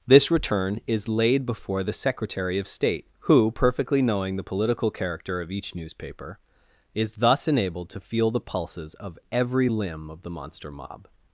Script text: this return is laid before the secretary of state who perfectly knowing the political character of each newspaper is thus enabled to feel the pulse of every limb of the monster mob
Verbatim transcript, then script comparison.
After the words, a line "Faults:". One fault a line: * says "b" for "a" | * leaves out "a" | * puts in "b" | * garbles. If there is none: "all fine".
this return is laid before the secretary of state who perfectly knowing the political character of each newspaper is thus enabled to feel the pulses of every limb of the monster mob
Faults:
* says "pulses" for "pulse"